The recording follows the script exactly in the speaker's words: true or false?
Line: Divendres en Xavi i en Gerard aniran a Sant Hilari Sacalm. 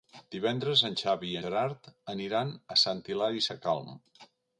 false